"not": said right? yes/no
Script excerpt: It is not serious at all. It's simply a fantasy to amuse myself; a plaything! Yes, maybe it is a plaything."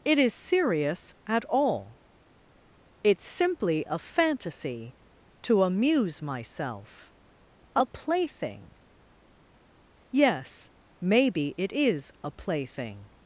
no